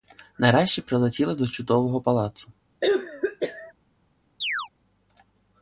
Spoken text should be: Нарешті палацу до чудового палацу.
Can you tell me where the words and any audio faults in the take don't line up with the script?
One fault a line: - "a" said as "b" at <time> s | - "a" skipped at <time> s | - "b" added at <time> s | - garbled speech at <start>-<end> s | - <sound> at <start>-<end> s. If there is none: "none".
- "палацу" said as "прилетіли" at 0.8 s
- cough at 2.8-3.7 s
- chirp at 4.4-4.7 s